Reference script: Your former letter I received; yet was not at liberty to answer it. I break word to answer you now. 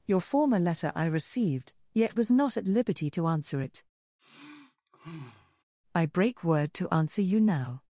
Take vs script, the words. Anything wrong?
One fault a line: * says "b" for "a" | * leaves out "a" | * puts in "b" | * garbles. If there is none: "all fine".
all fine